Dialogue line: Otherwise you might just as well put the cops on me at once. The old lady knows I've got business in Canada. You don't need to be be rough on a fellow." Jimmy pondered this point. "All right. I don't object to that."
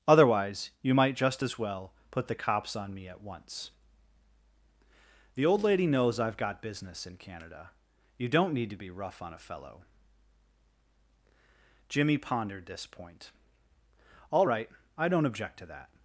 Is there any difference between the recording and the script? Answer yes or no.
yes